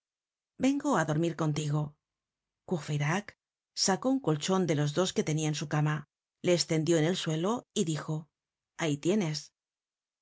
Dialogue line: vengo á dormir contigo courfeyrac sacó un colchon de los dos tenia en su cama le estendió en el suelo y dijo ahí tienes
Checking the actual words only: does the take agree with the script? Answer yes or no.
no